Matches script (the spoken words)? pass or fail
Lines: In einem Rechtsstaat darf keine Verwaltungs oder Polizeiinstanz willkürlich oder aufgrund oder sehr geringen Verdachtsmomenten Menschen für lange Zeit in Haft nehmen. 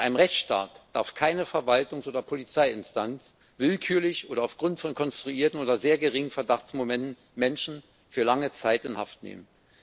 fail